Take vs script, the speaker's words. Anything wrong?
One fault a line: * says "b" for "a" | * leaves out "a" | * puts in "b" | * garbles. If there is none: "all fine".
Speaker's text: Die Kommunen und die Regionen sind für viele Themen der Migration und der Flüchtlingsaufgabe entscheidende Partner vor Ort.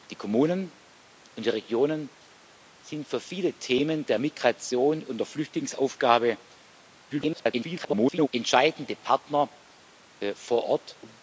* garbles